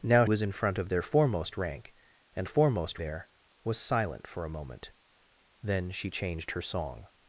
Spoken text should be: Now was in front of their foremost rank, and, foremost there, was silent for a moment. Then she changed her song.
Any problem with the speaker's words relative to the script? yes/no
no